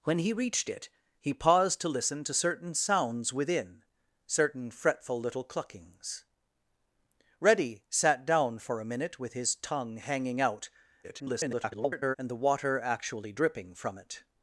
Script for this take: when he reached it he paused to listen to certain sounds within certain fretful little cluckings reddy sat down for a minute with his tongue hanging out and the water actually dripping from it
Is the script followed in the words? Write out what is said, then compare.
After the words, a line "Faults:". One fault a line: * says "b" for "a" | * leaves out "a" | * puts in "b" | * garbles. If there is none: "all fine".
when he reached it he paused to listen to certain sounds within certain fretful little cluckings reddy sat down for a minute with his tongue hanging out [garbled] and the water actually dripping from it
Faults:
* garbles